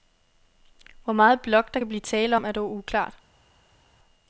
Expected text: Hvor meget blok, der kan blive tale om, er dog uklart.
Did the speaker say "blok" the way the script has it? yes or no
yes